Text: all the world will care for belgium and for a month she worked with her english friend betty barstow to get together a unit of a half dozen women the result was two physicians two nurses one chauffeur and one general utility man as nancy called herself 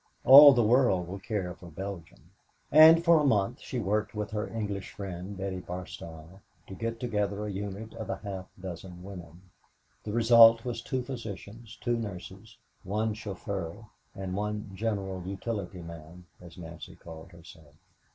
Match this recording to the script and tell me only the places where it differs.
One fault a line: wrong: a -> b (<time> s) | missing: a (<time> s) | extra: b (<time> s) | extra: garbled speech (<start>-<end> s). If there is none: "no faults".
no faults